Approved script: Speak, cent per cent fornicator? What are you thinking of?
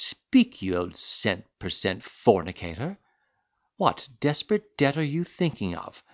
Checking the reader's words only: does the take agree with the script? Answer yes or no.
no